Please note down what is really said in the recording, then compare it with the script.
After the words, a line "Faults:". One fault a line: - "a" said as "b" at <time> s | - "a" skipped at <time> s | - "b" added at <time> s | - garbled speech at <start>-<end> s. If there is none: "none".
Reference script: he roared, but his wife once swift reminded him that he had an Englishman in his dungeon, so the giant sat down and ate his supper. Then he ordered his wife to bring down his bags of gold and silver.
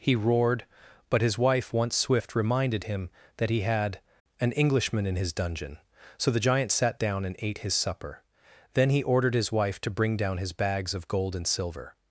he roared, but his wife once swift reminded him that he had an Englishman in his dungeon, so the giant sat down and ate his supper. Then he ordered his wife to bring down his bags of gold and silver.
Faults:
none